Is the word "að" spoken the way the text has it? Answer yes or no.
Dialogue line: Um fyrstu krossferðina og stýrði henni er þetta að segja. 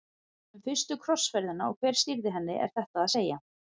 yes